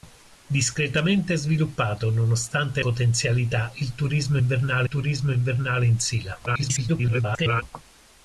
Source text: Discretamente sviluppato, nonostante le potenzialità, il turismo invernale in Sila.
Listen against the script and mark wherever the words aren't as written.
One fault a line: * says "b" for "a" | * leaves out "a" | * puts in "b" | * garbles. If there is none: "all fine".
* leaves out "le"
* puts in "turismo invernale"
* garbles